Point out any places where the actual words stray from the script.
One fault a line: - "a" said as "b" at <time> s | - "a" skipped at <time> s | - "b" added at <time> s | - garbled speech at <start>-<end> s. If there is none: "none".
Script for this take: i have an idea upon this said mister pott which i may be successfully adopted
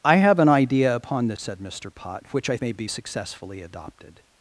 none